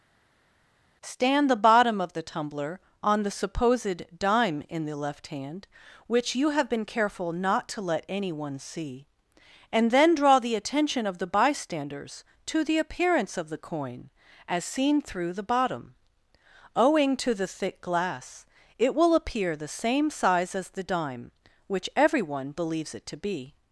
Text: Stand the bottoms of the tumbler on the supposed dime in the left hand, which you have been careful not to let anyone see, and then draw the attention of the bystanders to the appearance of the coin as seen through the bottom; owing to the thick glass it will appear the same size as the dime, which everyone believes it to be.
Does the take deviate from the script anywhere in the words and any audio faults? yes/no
yes